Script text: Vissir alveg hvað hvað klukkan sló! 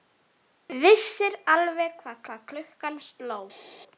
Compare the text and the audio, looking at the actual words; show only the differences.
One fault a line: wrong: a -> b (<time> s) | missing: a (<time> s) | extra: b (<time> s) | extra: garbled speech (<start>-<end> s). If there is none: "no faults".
no faults